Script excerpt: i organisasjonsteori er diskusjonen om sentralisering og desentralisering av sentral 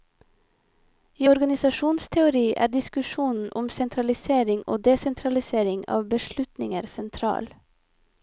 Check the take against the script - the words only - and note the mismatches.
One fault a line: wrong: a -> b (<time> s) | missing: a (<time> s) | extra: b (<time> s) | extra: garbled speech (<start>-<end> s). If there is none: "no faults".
extra: beslutninger (6.2 s)